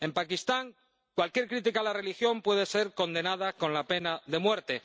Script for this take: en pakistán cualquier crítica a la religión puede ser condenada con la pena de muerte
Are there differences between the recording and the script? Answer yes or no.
no